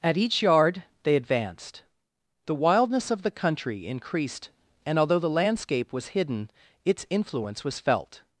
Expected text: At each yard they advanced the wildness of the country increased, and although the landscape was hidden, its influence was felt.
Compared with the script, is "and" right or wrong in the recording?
right